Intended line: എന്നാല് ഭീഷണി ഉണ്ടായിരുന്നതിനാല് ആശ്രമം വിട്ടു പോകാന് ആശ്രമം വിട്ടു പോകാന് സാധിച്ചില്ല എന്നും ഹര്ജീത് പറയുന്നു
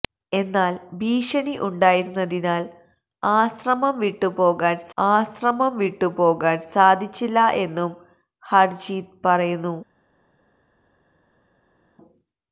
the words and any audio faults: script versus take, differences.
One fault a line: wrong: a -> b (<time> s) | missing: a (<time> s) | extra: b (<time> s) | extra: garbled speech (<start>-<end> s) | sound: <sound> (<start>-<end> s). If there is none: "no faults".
no faults